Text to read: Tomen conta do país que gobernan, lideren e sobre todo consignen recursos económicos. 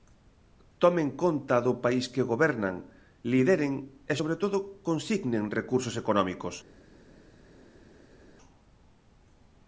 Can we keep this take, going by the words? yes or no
yes